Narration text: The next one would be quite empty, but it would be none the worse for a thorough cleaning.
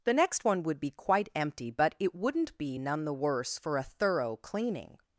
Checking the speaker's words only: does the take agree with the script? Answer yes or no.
no